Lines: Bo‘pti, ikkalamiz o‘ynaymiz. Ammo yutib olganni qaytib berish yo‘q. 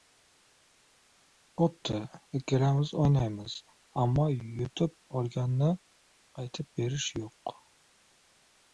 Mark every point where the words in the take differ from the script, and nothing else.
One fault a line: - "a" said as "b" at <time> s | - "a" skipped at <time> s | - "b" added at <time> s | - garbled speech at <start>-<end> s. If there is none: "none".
none